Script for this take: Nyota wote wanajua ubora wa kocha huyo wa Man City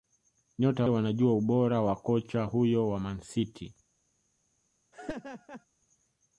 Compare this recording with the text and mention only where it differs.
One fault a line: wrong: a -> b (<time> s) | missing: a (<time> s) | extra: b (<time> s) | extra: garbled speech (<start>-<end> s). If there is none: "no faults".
missing: wote (0.9 s)